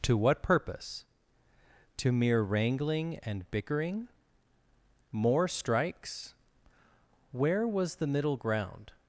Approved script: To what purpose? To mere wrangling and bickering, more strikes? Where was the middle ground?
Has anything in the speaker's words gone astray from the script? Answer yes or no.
no